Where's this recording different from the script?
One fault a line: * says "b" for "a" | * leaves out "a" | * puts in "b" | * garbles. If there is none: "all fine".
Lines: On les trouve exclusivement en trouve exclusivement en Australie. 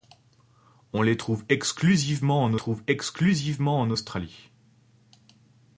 all fine